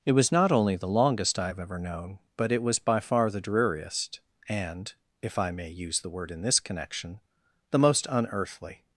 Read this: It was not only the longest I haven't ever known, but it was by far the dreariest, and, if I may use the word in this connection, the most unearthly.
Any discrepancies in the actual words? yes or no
yes